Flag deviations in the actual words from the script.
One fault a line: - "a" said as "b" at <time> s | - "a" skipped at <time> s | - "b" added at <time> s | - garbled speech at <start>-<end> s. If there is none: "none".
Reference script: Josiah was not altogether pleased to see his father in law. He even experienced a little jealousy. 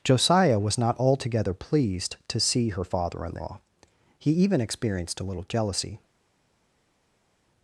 - "his" said as "her" at 2.7 s